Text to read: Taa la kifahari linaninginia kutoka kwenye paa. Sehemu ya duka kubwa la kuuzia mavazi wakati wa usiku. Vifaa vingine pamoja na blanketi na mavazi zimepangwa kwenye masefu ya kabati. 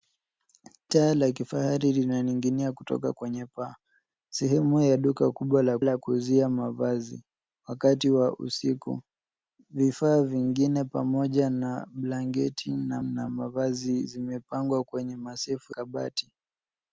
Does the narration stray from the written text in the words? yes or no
yes